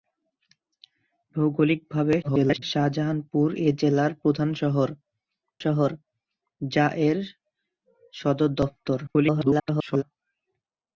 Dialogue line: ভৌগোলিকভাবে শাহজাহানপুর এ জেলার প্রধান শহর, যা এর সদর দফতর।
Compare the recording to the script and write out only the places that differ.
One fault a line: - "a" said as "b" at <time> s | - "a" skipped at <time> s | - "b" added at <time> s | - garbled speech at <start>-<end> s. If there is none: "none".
- garbled speech at 2.2-2.6 s
- "শহর" added at 5.6 s
- garbled speech at 9.1-10.0 s